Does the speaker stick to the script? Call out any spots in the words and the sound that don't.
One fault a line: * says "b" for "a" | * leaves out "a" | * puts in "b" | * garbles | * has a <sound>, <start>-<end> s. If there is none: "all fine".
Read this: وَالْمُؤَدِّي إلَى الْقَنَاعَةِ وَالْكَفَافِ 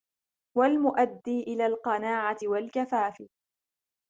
all fine